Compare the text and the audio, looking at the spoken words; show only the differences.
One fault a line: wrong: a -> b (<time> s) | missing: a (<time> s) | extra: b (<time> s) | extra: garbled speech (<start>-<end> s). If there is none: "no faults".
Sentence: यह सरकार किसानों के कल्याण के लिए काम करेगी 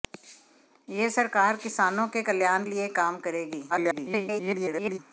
missing: के (2.6 s)
extra: garbled speech (3.7-5.0 s)